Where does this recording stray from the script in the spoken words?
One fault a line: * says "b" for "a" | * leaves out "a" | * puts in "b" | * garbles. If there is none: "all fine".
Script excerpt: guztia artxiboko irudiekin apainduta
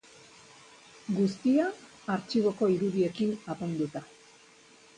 all fine